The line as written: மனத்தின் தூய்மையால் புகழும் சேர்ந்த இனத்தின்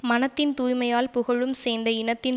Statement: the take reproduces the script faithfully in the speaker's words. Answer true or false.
true